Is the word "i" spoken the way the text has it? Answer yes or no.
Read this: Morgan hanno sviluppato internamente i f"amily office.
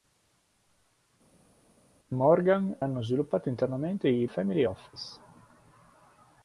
yes